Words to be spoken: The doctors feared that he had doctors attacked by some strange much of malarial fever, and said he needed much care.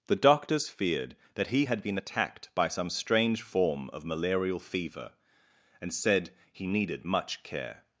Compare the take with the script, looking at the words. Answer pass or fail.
fail